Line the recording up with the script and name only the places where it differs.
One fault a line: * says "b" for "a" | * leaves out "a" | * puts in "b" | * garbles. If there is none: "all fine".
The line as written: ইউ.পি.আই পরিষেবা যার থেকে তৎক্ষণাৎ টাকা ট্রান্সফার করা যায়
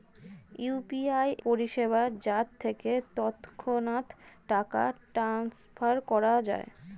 all fine